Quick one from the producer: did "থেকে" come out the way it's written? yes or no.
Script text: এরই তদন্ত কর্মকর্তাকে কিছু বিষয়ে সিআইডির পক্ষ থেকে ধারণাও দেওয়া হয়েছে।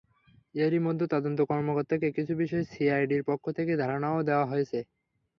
yes